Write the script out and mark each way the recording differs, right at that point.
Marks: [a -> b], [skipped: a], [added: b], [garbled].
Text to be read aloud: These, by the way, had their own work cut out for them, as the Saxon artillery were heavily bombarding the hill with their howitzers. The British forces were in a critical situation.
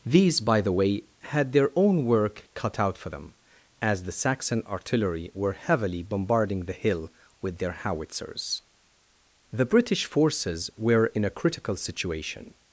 These, by the way, had their own work cut out for them, as the Saxon artillery were heavily bombarding the hill with their howitzers. The British forces were in a critical situation.